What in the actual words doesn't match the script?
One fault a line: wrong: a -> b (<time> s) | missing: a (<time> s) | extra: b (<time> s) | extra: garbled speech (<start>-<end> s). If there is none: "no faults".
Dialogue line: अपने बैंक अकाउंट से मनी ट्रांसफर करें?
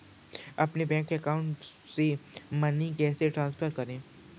extra: कैसे (3.0 s)